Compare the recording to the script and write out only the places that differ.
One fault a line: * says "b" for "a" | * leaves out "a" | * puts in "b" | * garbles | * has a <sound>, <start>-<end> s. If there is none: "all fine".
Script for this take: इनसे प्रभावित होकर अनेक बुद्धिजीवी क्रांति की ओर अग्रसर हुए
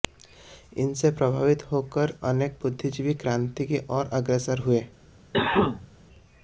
* has a cough, 5.3-5.9 s